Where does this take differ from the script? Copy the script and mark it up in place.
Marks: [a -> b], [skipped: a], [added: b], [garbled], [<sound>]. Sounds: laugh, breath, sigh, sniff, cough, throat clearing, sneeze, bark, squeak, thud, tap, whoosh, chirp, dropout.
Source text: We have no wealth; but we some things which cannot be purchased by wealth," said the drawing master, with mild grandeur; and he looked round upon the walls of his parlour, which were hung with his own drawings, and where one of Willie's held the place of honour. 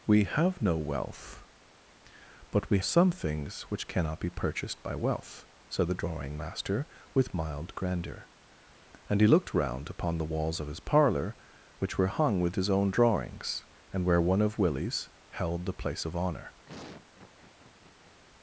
We have no wealth; but we some things which cannot be purchased by wealth," said the drawing master, with mild grandeur; and he looked round upon the walls of his parlour, which were hung with his own drawings, and where one of Willie's held the place of honour. [laugh]